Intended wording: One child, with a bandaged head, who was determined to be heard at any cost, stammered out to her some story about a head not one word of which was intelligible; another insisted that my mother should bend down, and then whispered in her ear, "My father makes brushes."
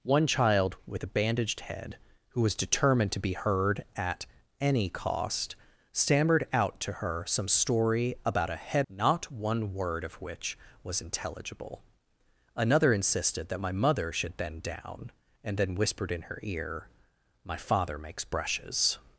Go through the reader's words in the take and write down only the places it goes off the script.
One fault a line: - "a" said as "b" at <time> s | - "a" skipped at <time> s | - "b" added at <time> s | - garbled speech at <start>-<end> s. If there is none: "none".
none